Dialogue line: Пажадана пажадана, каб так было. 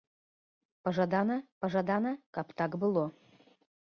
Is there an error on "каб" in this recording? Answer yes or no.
no